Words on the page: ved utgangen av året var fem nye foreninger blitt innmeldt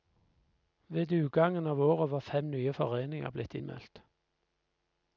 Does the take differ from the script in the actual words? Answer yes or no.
no